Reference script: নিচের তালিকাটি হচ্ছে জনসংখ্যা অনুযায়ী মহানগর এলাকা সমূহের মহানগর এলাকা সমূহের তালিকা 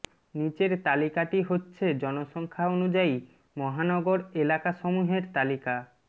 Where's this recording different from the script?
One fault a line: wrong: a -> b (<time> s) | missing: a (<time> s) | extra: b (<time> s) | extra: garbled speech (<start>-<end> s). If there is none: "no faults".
missing: মহানগর এলাকা সমূহের (5.2 s)